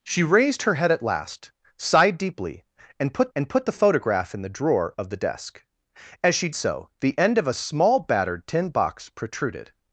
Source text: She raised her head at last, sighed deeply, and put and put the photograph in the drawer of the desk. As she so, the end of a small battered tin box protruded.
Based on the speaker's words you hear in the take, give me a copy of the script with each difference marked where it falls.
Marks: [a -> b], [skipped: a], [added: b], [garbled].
She raised her head at last, sighed deeply, and put and put the photograph in the drawer of the desk. As she so, the end of a small battered tin box protruded.